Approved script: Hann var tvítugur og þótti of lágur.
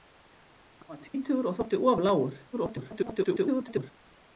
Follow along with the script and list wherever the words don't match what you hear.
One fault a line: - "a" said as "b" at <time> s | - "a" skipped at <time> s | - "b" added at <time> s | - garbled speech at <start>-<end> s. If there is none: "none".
- garbled speech at 2.5-3.9 s